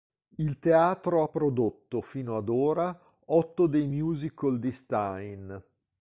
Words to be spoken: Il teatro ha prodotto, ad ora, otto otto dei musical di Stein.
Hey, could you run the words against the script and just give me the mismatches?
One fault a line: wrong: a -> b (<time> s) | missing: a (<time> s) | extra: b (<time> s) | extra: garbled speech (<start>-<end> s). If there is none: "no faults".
extra: fino (2.0 s)
missing: otto (3.7 s)